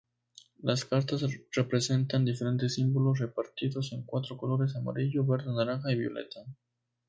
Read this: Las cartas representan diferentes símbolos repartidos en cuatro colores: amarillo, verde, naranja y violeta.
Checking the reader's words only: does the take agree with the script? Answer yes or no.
yes